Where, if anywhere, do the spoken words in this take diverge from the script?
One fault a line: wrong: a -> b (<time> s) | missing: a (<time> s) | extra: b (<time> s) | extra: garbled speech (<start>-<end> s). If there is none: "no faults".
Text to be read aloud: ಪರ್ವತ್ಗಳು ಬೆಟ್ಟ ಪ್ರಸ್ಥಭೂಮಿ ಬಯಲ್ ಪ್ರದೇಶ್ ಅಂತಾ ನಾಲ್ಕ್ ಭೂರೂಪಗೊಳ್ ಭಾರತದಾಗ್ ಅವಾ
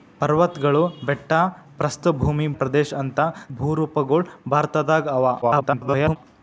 missing: ಬಯಲ್ (2.5 s)
missing: ನಾಲ್ಕ್ (3.3 s)
extra: garbled speech (5.4-6.2 s)